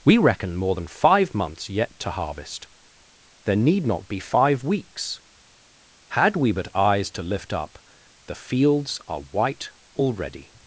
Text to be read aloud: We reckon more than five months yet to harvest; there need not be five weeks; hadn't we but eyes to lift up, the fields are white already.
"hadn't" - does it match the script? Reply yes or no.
no